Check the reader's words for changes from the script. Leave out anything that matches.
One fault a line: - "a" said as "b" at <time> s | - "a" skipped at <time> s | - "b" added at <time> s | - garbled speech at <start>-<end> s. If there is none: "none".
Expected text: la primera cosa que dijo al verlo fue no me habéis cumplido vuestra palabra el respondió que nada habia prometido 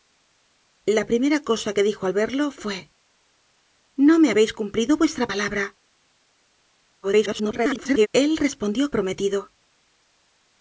- garbled speech at 7.0-8.1 s
- "que nada habia" skipped at 8.9 s